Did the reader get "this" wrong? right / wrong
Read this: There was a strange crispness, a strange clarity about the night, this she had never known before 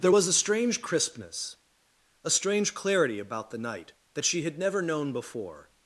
wrong